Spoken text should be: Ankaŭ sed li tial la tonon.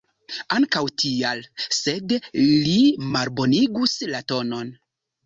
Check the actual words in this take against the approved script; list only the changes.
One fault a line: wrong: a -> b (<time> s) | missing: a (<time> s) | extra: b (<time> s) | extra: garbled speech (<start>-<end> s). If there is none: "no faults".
extra: tial (1.0 s)
wrong: tial -> malbonigus (3.2 s)